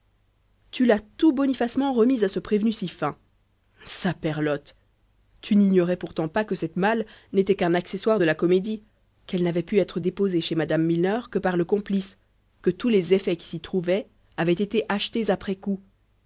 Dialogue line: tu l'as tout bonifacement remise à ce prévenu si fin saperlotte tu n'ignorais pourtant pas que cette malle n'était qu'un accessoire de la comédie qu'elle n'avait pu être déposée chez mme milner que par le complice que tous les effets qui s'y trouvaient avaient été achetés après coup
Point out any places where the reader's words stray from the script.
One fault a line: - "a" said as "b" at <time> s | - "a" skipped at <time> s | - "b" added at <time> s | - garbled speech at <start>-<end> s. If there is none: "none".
none